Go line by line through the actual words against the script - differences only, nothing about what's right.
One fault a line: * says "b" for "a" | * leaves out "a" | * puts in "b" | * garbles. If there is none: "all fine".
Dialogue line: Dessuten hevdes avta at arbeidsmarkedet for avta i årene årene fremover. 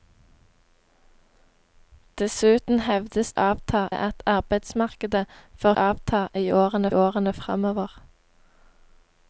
all fine